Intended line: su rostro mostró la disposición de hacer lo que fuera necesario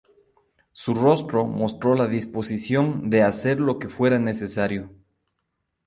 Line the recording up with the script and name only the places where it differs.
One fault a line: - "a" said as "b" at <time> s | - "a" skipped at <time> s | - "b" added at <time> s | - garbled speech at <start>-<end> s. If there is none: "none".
none